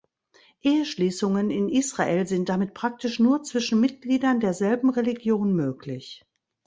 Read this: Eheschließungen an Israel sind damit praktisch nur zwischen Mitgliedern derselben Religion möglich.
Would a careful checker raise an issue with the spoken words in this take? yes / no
yes